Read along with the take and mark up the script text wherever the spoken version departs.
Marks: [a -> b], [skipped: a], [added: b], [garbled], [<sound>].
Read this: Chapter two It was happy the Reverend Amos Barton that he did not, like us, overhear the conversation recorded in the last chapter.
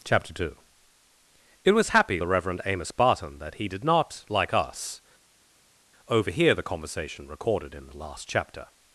Chapter two It was happy the Reverend Amos Barton that he did not, like us, overhear the conversation recorded in the last chapter.